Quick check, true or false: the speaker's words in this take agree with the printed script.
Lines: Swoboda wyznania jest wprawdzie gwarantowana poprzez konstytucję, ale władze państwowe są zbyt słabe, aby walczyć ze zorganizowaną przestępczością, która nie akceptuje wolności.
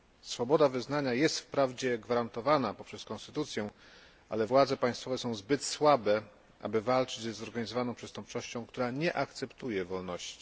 true